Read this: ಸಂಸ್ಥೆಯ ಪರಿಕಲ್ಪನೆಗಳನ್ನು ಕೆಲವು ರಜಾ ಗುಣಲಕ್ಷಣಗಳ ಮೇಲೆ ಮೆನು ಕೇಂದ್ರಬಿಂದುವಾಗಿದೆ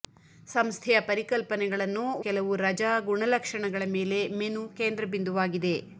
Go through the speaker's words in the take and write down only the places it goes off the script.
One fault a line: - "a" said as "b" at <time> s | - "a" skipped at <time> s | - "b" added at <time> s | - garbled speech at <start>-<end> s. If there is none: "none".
none